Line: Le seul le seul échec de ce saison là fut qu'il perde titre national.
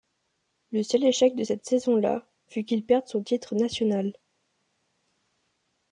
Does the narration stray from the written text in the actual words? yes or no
yes